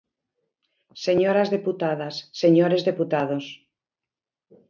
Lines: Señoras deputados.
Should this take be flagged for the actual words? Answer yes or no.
yes